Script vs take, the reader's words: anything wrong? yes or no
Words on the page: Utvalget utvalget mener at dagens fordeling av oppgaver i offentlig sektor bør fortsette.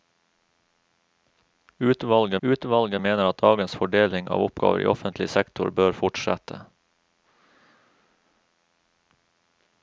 no